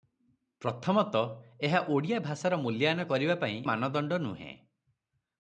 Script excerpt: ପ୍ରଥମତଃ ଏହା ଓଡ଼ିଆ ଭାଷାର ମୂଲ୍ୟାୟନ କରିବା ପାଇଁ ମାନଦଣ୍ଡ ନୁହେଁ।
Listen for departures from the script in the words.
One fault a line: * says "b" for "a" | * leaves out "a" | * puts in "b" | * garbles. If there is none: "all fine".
all fine